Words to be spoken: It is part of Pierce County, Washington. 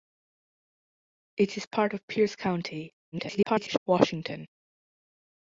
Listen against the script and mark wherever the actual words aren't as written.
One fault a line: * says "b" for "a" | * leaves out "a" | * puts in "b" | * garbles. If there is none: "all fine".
* garbles